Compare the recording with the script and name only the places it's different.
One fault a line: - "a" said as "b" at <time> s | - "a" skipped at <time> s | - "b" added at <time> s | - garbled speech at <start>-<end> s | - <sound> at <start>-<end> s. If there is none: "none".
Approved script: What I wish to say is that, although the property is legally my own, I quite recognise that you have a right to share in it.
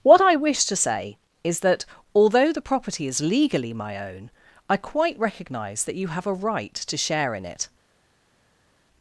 none